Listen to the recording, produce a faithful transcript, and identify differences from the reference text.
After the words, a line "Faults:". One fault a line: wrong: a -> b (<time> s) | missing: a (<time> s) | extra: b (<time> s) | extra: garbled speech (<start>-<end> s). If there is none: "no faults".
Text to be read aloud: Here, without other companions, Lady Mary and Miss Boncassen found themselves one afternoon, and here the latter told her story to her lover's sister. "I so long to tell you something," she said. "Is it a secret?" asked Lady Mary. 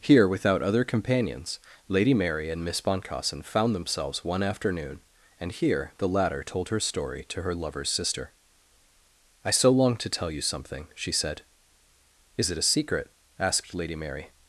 Here, without other companions, Lady Mary and Miss Boncassen found themselves one afternoon, and here the latter told her story to her lover's sister. "I so long to tell you something," she said. "Is it a secret?" asked Lady Mary.
Faults:
no faults